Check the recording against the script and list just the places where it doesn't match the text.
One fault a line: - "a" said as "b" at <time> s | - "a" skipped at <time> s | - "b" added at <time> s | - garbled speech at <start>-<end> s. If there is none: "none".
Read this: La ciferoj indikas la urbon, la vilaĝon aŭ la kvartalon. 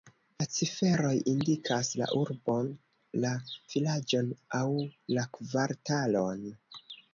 none